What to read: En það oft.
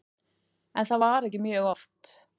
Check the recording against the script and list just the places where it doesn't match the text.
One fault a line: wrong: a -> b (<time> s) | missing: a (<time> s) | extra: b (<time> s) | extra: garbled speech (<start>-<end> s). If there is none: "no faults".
extra: var ekki mjög (1.0 s)